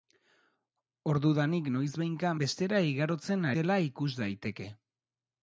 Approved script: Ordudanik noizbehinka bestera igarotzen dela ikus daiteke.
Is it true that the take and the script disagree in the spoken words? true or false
false